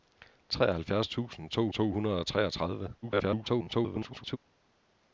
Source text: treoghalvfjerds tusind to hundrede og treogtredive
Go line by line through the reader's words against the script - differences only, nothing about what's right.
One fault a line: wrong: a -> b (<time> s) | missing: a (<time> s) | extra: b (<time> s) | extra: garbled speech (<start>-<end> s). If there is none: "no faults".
extra: to (1.7 s)
extra: garbled speech (3.0-4.4 s)